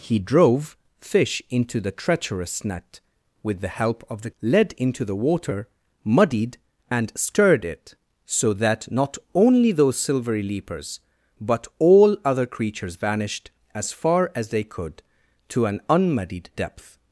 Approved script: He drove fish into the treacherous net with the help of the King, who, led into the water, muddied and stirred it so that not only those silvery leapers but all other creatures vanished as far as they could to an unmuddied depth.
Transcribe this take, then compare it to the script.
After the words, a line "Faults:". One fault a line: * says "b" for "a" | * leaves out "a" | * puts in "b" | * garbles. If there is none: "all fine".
He drove fish into the treacherous net with the help of the Led into the water, muddied and stirred it so that not only those silvery leapers but all other creatures vanished as far as they could to an unmuddied depth.
Faults:
* leaves out "King who"